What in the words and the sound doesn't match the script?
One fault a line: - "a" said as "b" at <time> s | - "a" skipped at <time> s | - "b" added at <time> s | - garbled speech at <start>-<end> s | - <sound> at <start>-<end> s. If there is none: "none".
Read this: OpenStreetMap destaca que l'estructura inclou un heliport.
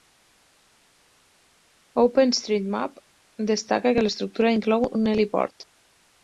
none